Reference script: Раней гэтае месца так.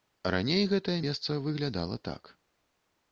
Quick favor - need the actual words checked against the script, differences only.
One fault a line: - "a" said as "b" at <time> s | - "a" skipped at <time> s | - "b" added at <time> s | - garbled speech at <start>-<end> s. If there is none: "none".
- "выглядала" added at 1.4 s